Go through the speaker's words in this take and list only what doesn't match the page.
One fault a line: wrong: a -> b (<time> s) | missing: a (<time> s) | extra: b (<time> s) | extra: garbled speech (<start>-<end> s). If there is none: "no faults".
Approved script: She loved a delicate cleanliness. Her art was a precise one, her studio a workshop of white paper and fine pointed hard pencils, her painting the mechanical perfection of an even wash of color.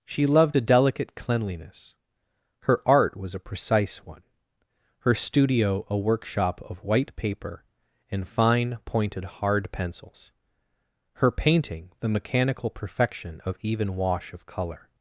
missing: an (13.6 s)